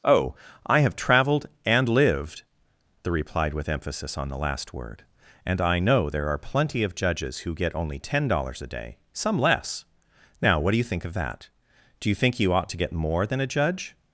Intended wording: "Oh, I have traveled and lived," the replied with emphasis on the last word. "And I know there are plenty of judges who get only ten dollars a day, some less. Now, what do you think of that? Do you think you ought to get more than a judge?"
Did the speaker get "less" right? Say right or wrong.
right